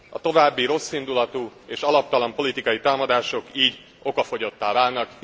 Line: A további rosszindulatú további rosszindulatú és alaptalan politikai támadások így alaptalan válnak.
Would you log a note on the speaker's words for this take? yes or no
yes